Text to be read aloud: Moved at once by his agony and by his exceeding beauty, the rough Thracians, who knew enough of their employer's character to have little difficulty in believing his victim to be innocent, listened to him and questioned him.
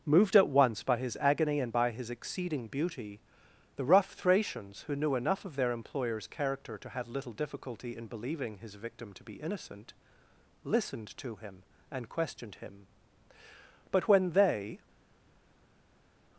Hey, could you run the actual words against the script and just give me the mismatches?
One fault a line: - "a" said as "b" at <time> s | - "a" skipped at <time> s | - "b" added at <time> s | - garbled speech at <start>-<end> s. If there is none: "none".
- "But when they" added at 13.9 s